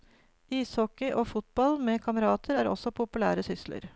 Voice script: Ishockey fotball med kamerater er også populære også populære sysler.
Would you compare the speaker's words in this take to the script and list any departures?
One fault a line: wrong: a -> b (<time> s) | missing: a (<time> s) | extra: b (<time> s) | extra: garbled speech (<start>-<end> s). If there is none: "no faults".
extra: og (1.1 s)
missing: også populære (3.4 s)